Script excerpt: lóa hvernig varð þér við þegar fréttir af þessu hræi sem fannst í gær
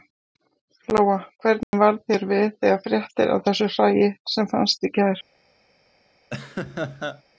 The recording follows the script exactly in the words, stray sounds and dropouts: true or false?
false